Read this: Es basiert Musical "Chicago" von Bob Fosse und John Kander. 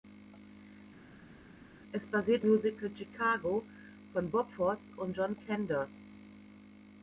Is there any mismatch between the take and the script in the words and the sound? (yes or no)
no